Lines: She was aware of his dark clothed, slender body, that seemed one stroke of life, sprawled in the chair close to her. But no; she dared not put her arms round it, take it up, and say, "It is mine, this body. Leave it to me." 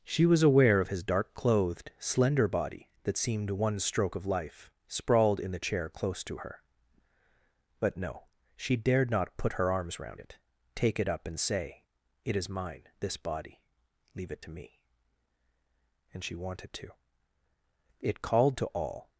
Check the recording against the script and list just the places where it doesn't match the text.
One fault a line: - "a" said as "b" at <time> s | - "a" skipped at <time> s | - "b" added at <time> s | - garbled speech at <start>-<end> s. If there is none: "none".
- "And she wanted to It called to all" added at 16.1 s